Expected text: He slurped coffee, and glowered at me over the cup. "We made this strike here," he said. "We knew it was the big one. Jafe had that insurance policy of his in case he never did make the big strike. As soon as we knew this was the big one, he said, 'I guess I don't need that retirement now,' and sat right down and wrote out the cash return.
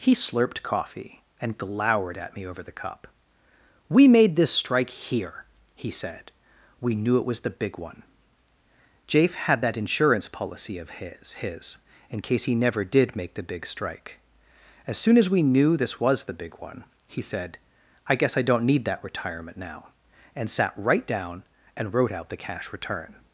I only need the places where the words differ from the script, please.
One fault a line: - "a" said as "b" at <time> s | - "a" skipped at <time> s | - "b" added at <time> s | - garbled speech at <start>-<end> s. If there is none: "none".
- "his" added at 11.4 s